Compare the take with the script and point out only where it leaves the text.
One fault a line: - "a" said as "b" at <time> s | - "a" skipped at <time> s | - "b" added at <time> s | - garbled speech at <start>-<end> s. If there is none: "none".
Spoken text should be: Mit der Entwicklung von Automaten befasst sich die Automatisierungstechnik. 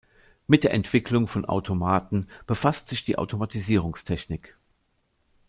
none